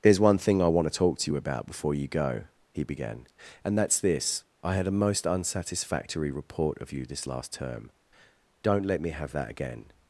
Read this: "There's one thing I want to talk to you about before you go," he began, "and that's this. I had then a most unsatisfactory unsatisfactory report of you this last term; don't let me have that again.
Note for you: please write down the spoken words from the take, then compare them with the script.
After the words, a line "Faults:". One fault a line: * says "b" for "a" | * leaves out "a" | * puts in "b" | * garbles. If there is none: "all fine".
"There's one thing I want to talk to you about before you go," he began, "and that's this. I had a most unsatisfactory report of you this last term; don't let me have that again.
Faults:
* leaves out "then"
* leaves out "unsatisfactory"